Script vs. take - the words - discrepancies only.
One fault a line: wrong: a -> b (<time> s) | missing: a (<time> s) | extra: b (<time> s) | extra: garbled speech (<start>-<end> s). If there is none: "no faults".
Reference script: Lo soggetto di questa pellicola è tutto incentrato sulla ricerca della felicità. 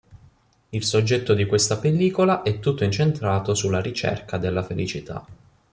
wrong: Lo -> Il (0.7 s)